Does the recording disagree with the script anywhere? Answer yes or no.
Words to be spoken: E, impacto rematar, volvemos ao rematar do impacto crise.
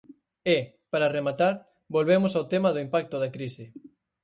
yes